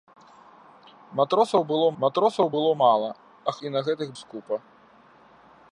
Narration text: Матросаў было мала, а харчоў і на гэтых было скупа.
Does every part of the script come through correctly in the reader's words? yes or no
no